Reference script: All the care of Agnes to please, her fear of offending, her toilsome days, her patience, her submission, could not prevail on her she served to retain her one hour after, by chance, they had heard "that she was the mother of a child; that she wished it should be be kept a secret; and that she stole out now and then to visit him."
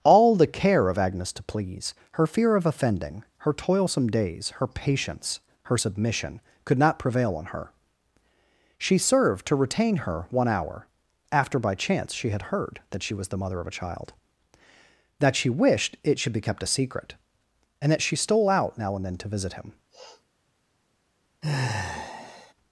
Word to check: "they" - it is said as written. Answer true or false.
false